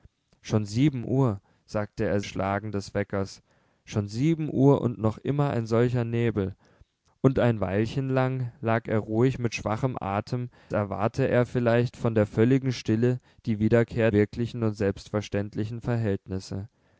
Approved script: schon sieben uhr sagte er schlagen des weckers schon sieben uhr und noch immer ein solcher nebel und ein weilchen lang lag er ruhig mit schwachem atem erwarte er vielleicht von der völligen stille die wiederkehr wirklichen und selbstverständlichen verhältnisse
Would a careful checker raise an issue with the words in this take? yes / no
no